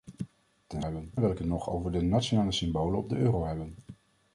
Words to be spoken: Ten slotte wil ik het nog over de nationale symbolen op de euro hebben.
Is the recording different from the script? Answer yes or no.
yes